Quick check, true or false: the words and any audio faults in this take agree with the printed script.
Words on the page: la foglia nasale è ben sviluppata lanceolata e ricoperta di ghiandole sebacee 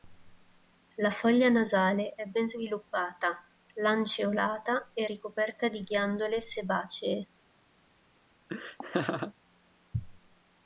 false